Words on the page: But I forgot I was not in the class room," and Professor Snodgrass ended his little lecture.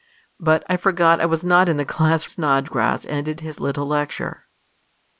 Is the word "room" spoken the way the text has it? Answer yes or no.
no